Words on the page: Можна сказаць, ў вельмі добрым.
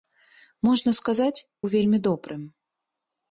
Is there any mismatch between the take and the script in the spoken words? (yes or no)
no